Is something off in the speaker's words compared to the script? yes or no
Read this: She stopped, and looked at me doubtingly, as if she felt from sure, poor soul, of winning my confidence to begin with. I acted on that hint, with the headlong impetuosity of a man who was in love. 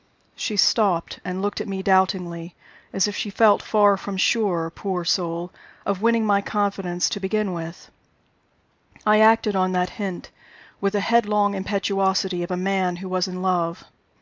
yes